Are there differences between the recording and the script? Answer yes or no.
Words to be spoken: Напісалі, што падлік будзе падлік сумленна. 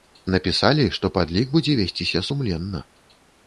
yes